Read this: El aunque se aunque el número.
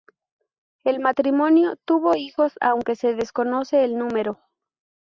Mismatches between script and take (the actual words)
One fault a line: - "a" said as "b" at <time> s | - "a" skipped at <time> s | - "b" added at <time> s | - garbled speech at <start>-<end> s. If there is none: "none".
- "matrimonio tuvo hijos" added at 1.0 s
- "aunque" said as "desconoce" at 3.1 s